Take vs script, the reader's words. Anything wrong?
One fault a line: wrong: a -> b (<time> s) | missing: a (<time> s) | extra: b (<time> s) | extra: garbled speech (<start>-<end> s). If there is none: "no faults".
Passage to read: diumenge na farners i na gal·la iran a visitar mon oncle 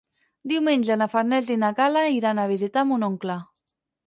no faults